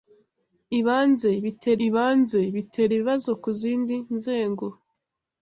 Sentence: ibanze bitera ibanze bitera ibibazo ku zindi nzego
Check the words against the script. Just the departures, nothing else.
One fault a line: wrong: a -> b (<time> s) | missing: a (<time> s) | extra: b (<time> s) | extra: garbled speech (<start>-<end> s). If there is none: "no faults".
no faults